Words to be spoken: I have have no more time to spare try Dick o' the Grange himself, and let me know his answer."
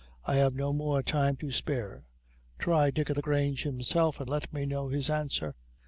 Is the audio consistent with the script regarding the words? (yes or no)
no